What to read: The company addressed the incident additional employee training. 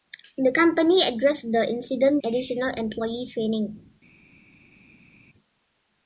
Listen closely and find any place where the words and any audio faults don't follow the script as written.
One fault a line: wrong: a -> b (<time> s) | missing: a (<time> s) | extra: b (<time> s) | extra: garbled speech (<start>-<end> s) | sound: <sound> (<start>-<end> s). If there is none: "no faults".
no faults